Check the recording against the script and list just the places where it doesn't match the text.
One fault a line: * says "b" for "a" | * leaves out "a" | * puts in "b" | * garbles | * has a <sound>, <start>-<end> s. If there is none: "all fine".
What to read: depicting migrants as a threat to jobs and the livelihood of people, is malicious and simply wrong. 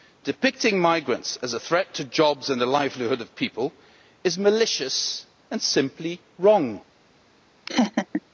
* has a laugh, 7.7-8.2 s